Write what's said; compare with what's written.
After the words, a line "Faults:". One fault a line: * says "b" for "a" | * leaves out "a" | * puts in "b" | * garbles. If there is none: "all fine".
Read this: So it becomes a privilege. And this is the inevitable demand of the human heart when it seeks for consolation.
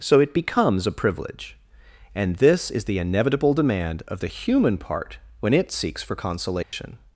So it becomes a privilege. And this is the inevitable demand of the human part when it seeks for consolation.
Faults:
* says "part" for "heart"